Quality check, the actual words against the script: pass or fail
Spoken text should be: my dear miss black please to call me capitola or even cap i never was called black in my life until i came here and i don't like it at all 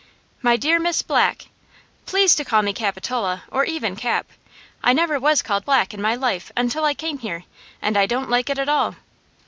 pass